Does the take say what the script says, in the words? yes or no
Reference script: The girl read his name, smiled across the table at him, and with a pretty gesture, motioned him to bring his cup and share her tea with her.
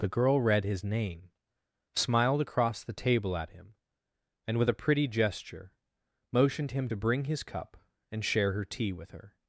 yes